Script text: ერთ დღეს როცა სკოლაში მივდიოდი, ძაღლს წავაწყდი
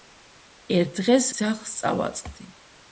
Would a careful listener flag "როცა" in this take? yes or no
yes